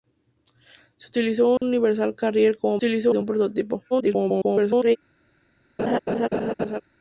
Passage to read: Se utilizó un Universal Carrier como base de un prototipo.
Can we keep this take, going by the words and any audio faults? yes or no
no